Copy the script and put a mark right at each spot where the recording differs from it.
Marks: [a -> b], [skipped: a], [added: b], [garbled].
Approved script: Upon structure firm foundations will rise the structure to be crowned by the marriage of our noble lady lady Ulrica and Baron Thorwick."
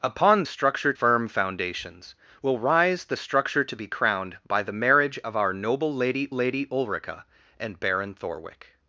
Upon structure firm foundations will rise the structure to be crowned by the marriage of our noble lady lady Ulrica and Baron Thorwick."